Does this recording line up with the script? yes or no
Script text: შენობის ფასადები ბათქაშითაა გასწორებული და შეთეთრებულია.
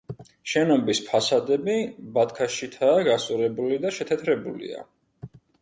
yes